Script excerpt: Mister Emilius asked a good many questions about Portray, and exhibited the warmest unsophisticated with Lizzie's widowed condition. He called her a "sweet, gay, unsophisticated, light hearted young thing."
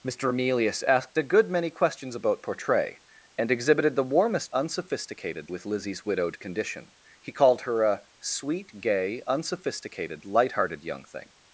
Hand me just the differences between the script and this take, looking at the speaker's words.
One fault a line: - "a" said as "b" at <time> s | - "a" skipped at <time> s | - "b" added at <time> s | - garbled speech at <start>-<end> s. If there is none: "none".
none